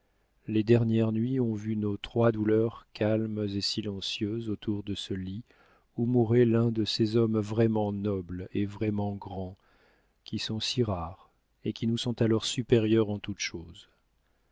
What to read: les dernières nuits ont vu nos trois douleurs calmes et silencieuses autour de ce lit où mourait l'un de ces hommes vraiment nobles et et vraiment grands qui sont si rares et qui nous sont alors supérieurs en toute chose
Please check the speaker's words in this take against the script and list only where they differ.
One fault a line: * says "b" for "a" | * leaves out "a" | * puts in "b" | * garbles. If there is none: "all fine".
* leaves out "et"